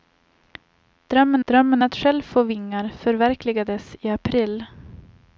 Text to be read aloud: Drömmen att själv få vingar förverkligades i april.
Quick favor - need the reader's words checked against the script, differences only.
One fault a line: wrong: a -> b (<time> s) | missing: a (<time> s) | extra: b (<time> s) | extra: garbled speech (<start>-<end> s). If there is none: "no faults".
extra: drömmen (1.4 s)